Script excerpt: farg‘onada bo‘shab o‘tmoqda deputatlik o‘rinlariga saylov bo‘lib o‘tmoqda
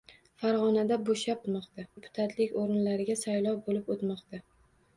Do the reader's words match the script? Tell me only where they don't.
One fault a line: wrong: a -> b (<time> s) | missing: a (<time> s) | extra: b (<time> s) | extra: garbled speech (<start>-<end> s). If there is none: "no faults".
no faults